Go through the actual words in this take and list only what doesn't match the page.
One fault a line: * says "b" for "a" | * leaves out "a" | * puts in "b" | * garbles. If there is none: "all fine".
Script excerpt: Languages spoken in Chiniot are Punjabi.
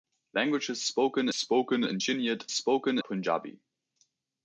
* puts in "spoken"
* says "spoken" for "are"